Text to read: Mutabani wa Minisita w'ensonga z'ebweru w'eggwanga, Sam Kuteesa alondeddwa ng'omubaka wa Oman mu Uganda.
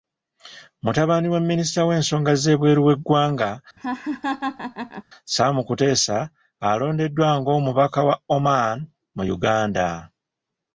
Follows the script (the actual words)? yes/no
yes